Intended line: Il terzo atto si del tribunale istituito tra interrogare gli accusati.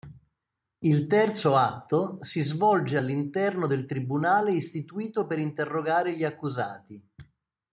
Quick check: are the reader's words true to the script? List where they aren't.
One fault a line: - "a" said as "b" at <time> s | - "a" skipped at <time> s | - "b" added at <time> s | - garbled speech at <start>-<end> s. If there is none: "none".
- "svolge all'interno" added at 2.4 s
- "tra" said as "per" at 5.2 s